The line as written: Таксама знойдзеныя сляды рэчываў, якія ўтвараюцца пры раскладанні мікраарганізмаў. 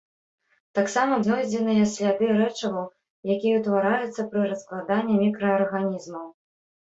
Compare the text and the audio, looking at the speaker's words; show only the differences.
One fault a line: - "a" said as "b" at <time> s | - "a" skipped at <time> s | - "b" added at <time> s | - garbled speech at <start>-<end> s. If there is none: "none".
none